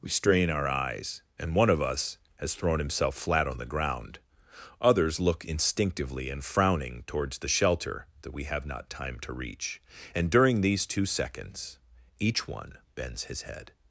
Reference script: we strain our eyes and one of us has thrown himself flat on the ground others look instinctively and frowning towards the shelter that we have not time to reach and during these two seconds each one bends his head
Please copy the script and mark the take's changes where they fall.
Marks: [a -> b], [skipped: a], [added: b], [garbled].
we strain our eyes and one of us has thrown himself flat on the ground others look instinctively and frowning towards the shelter that we have not time to reach and during these two seconds each one bends his head